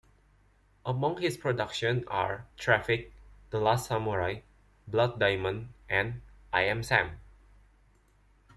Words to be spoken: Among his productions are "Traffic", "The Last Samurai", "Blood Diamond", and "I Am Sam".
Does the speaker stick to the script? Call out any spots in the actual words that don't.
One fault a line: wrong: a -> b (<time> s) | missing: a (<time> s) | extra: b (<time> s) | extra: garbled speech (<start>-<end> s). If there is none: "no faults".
no faults